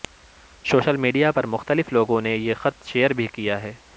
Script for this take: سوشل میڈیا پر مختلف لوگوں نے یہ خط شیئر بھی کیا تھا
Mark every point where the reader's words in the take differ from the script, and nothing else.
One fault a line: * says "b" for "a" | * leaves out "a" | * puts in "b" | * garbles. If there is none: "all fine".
* says "ہے" for "تھا"